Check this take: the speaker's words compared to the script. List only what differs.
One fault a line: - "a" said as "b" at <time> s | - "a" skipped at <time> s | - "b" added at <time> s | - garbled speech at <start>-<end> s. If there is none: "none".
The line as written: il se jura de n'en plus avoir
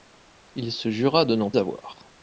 - "plus" skipped at 1.5 s